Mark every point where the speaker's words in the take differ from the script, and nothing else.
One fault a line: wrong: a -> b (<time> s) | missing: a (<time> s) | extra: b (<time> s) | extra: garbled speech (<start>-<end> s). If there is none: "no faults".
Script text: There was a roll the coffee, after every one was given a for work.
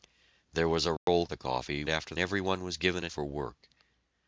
no faults